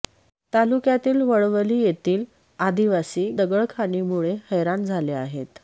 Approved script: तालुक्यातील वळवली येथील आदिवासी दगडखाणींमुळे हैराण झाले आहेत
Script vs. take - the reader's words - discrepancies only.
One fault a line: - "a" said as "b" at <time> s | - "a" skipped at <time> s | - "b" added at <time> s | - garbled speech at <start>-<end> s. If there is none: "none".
none